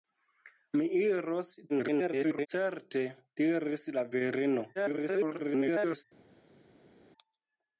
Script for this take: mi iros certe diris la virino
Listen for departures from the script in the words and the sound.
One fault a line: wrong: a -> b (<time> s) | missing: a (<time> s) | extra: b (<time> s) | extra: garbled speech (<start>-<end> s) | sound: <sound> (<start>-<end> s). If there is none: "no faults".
extra: garbled speech (1.7-2.5 s)
extra: garbled speech (4.8-6.0 s)